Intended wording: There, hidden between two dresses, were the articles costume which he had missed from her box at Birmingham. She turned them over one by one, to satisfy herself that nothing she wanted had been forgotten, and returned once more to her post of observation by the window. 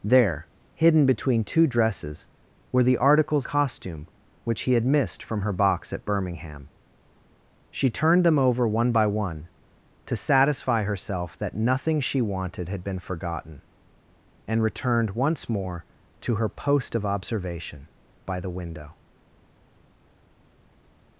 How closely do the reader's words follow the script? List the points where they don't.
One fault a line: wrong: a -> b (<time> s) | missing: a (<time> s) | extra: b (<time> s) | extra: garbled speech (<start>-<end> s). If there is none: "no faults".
no faults